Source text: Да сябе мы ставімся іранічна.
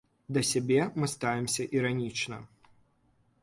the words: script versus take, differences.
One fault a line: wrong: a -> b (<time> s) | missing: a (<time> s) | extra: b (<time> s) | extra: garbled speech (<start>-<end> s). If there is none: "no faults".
no faults